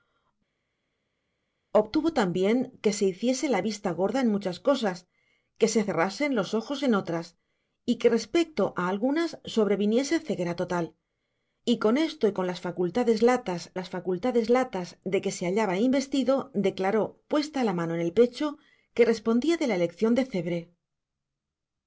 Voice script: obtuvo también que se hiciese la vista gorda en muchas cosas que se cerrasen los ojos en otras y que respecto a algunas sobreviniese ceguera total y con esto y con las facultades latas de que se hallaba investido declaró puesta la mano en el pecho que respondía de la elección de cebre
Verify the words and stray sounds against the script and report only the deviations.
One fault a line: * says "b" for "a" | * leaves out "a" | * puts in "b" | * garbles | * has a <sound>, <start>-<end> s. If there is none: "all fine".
* puts in "las facultades latas"